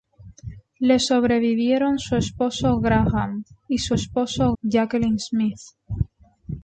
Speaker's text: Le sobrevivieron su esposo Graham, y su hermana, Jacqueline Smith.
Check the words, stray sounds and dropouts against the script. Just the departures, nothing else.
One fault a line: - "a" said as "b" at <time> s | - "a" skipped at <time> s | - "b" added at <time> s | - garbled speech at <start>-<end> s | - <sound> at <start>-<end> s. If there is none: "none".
- "hermana" said as "esposo" at 3.9 s